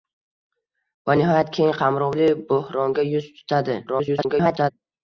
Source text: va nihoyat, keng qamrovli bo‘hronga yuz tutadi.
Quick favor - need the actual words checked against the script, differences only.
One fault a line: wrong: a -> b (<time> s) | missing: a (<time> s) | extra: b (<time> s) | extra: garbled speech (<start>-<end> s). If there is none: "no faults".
extra: garbled speech (3.9-4.7 s)